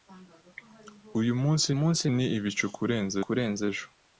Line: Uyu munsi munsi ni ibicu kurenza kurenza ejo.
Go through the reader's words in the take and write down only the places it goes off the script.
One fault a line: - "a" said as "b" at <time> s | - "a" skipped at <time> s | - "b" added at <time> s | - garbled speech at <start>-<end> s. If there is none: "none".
none